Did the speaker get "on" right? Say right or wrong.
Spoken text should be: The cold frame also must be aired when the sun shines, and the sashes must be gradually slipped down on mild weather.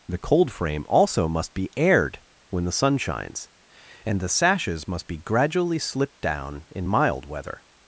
wrong